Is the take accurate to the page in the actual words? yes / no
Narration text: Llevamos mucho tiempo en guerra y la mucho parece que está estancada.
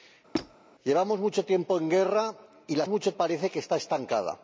yes